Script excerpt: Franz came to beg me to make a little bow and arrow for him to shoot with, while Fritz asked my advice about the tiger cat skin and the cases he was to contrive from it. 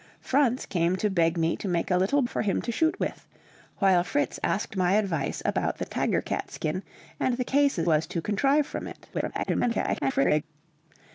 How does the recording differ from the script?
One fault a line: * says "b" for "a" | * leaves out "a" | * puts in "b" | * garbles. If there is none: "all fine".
* leaves out "bow and arrow"
* leaves out "he"
* garbles